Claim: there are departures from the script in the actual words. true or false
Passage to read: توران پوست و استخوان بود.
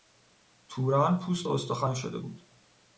true